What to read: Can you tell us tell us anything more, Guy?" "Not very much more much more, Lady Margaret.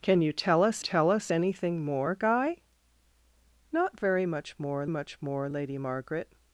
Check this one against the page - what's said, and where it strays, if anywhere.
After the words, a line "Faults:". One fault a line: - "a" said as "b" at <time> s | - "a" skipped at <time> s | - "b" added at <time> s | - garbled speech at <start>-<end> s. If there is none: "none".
Can you tell us tell us anything more, Guy?" "Not very much more much more, Lady Margaret.
Faults:
none